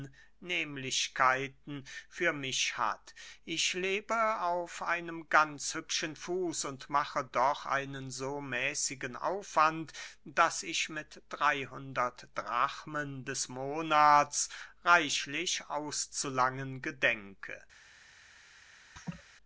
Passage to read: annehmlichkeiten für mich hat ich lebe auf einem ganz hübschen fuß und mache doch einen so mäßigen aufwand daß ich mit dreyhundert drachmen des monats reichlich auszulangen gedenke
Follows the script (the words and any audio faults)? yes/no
no